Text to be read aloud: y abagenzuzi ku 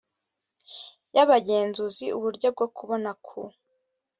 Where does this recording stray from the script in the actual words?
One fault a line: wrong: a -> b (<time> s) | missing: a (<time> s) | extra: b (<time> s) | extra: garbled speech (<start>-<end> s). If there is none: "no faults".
extra: uburyo bwo kubona (2.2 s)